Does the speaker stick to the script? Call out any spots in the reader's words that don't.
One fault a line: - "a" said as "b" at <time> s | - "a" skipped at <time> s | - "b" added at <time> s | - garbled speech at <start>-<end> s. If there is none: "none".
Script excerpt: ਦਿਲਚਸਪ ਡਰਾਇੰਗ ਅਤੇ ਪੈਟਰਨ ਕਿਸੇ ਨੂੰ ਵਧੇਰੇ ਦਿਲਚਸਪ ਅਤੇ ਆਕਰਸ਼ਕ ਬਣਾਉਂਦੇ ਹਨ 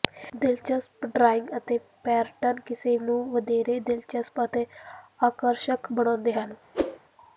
none